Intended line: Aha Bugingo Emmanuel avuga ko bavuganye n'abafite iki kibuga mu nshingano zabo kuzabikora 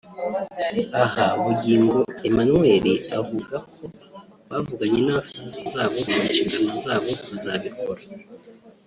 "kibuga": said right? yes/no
no